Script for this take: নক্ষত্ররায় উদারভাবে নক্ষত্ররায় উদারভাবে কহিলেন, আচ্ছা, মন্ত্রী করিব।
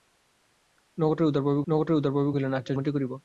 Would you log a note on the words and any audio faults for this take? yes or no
no